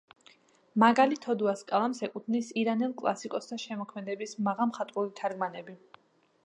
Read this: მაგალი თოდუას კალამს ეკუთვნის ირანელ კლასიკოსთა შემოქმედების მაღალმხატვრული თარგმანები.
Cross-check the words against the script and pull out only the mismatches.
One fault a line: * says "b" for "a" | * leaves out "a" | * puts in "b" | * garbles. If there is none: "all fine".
all fine